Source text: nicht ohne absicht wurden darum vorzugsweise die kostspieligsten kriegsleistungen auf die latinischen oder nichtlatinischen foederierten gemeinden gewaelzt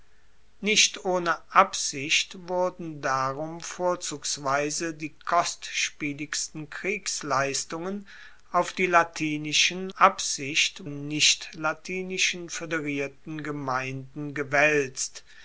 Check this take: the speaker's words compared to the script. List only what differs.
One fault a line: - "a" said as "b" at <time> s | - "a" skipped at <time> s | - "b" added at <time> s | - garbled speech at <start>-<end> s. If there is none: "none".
- "oder" said as "absicht" at 10.0 s